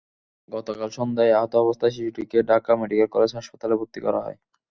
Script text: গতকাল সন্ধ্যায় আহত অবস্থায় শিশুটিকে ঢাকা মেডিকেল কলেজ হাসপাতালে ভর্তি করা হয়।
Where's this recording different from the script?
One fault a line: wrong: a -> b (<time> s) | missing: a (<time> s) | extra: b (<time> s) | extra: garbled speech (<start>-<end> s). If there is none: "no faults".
no faults